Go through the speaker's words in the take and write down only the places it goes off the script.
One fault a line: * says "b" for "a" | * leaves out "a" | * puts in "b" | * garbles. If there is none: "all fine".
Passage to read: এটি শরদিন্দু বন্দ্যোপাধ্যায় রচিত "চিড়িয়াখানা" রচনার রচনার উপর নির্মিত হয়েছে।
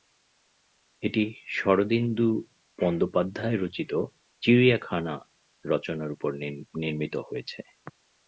* leaves out "রচনার"